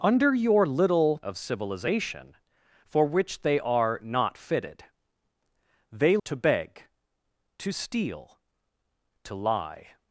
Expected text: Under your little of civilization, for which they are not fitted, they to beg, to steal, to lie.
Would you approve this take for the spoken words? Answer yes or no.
yes